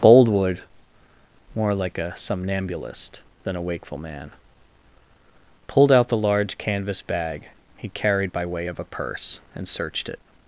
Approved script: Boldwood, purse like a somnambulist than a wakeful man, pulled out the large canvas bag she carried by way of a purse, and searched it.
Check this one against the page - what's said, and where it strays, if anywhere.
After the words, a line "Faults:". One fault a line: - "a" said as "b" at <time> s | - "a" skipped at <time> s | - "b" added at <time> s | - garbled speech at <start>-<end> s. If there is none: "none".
Boldwood, more like a somnambulist than a wakeful man, pulled out the large canvas bag he carried by way of a purse, and searched it.
Faults:
- "purse" said as "more" at 1.6 s
- "she" said as "he" at 7.8 s